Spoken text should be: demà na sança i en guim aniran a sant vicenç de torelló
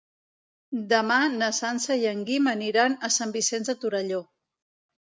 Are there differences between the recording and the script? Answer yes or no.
no